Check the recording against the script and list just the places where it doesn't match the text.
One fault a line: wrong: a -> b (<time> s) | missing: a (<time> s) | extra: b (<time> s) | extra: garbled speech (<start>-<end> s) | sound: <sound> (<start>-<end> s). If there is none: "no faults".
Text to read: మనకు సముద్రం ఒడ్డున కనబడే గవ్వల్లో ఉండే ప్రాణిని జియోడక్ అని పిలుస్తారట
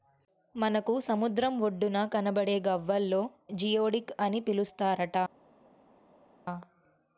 missing: ఉండే ప్రాణిని (3.2 s)